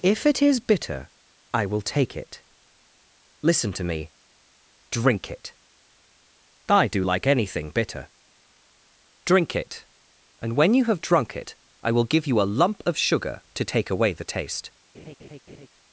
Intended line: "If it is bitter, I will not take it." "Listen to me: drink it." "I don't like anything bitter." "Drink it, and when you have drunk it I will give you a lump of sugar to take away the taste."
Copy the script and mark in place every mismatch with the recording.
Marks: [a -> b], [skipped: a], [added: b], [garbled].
"If it is bitter, I will [skipped: not] take it." "Listen to me: drink it." "I [don't -> do] like anything bitter." "Drink it, and when you have drunk it I will give you a lump of sugar to take away the taste."